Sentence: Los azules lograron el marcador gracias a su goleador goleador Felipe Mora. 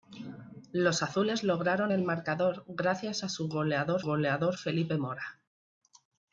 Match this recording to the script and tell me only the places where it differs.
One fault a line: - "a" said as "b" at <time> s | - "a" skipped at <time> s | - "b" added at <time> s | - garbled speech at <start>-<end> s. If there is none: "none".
none